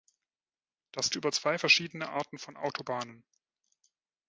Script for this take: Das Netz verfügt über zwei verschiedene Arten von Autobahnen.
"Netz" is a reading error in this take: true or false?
true